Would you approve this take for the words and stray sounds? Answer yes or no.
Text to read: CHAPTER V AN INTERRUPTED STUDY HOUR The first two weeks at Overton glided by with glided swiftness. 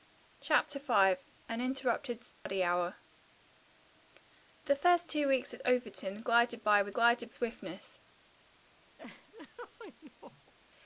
no